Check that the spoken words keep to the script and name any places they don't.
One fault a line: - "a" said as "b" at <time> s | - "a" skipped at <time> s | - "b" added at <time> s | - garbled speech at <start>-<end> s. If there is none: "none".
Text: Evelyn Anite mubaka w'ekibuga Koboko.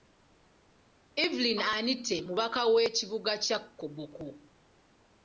- "kya" added at 3.5 s